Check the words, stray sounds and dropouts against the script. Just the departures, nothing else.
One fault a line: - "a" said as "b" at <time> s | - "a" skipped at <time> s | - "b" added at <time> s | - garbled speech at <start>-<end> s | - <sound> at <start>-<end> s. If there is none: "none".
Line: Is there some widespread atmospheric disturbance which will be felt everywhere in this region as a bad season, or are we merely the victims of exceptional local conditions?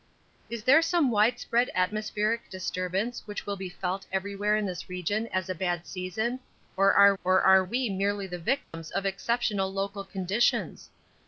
- "or are" added at 7.2 s
- dropout at 8.6-8.7 s